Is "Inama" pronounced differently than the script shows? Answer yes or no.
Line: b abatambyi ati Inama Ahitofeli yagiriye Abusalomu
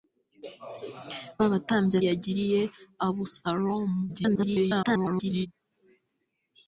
yes